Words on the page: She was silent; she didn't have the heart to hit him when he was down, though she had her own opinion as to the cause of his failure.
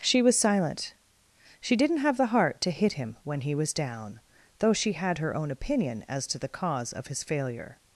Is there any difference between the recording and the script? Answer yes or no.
no